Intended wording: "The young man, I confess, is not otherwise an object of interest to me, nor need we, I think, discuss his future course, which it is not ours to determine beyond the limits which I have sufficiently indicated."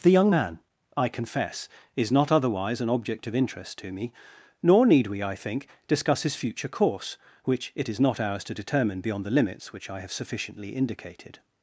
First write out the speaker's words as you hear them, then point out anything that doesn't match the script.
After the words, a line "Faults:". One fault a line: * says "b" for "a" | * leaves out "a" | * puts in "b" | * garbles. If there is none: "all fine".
"The young man, I confess, is not otherwise an object of interest to me, nor need we, I think, discuss his future course, which it is not ours to determine beyond the limits which I have sufficiently indicated."
Faults:
all fine